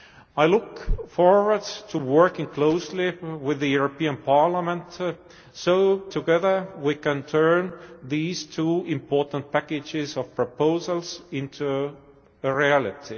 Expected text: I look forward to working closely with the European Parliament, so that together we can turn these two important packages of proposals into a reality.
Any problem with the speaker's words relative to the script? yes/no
yes